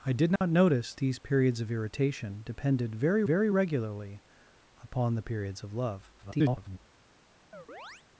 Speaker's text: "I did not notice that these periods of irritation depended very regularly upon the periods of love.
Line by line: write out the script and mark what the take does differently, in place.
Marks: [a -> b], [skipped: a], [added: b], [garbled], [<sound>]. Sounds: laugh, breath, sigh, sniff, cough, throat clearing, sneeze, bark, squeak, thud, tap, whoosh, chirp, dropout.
"I did not [dropout] notice [skipped: that] these periods of irritation depended very [added: very] regularly upon the periods of love. [garbled] [chirp]